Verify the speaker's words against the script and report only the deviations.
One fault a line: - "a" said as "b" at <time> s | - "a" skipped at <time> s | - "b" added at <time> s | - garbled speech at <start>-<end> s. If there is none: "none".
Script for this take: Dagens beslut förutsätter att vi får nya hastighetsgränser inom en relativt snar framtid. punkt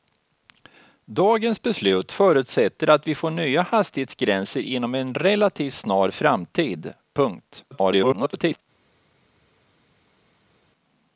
- garbled speech at 7.7-8.6 s